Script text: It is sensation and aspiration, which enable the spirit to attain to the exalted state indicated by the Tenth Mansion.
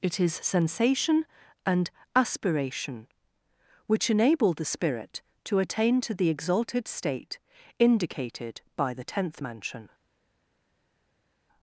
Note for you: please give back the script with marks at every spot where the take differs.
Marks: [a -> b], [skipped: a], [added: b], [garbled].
It is sensation and aspiration, which enable the spirit to attain to the exalted state indicated by the Tenth Mansion.